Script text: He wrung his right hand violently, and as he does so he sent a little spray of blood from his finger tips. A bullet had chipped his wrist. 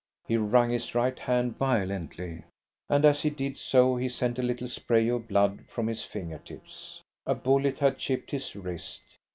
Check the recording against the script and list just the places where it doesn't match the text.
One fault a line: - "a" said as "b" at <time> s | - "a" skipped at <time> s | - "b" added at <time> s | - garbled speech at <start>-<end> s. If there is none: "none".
- "does" said as "did" at 3.3 s